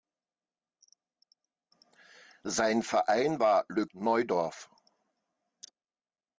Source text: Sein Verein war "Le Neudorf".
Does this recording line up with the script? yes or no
yes